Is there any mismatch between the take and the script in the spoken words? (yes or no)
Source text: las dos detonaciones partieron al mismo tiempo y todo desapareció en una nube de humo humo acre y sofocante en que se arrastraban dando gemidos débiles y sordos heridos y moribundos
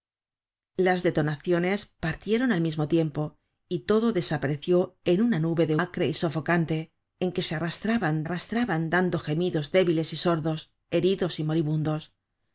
yes